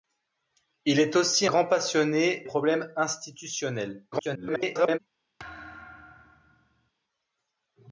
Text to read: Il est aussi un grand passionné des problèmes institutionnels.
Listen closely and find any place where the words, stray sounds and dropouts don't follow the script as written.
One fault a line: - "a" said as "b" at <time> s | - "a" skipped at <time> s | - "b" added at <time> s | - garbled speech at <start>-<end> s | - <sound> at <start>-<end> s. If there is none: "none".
- "un" skipped at 1.5 s
- "des" skipped at 2.4 s
- garbled speech at 4.1-5.0 s
- thud at 5.4-6.9 s